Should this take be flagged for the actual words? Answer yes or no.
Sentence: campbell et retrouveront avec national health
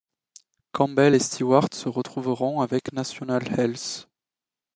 yes